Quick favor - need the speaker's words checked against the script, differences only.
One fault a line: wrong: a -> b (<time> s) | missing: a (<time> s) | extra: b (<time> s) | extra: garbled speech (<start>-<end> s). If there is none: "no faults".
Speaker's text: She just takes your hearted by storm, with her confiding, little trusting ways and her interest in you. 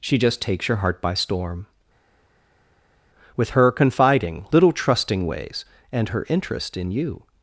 wrong: hearted -> heart (0.8 s)